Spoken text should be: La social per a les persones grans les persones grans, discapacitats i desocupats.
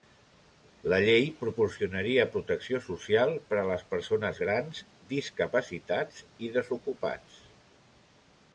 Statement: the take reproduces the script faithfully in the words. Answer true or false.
false